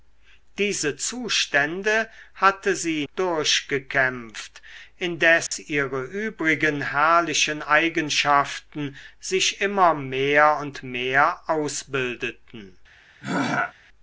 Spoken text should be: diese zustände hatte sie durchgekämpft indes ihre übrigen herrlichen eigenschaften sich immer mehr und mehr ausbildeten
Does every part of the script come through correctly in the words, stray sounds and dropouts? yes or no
no